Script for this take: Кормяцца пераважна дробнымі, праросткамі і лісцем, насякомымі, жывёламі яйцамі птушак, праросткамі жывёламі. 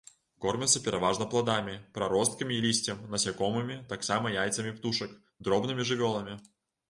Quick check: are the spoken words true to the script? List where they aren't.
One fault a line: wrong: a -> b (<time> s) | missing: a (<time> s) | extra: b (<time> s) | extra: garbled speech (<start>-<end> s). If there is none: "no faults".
wrong: дробнымі -> пладамі (1.3 s)
wrong: жывёламі -> таксама (3.9 s)
wrong: праросткамі -> дробнымі (5.5 s)